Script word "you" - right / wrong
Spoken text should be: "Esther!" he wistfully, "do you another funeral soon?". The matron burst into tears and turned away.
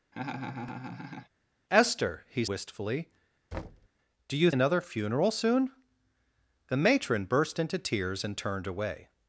right